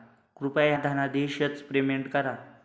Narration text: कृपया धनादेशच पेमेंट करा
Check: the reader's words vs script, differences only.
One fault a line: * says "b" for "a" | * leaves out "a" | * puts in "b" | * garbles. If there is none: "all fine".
all fine